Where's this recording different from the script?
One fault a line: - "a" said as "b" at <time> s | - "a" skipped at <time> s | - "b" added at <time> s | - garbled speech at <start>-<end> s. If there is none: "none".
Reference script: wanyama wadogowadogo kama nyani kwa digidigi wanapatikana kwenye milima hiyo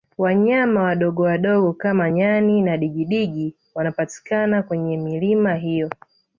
- "kwa" said as "na" at 2.6 s